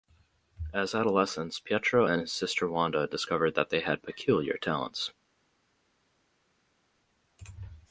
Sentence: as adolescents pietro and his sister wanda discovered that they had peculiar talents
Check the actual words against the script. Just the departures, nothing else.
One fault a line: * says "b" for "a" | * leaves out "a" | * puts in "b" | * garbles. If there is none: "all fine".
all fine